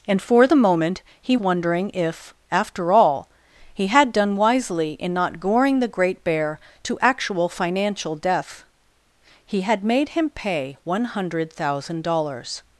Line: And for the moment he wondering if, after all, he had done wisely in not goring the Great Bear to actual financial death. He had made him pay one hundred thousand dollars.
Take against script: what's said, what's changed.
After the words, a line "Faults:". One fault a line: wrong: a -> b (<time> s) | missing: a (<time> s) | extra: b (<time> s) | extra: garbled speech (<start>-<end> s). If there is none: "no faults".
And for the moment he wondering if, after all, he had done wisely in not goring the Great Bear to actual financial death. He had made him pay one hundred thousand dollars.
Faults:
no faults